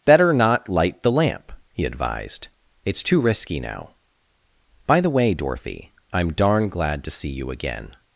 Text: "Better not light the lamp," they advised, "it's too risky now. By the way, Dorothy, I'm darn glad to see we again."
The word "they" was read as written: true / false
false